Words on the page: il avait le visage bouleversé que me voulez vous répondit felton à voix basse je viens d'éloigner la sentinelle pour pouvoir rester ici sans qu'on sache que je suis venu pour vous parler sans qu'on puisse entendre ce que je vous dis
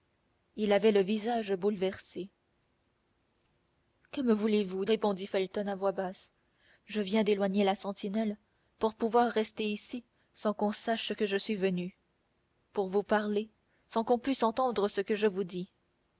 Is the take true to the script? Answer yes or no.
yes